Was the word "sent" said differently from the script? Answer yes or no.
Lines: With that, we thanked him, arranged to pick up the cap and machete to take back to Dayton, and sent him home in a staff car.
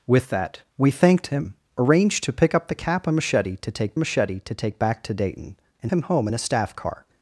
yes